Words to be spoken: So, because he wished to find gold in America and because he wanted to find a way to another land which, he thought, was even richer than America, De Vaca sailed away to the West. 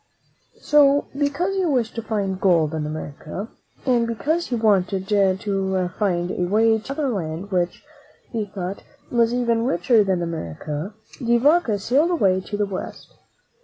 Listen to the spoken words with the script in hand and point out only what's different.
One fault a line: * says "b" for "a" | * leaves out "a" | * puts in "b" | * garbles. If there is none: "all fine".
all fine